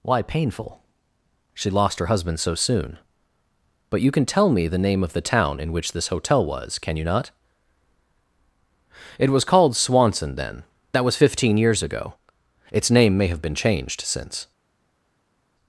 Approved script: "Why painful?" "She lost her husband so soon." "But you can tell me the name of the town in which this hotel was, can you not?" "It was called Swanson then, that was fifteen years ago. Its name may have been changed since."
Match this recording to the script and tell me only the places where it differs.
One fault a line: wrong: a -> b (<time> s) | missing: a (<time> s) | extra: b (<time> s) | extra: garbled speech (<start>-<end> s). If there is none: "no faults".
no faults